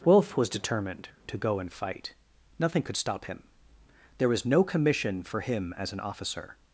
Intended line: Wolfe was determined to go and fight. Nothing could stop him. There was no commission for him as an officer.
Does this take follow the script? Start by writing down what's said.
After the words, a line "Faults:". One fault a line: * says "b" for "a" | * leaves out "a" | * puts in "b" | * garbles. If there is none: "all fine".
Wolfe was determined to go and fight. Nothing could stop him. There was no commission for him as an officer.
Faults:
all fine